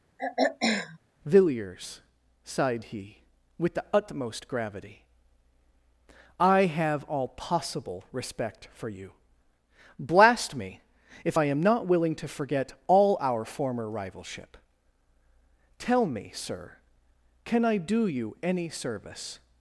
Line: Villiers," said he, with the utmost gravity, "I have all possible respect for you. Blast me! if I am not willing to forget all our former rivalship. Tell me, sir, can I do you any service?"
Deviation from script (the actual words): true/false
true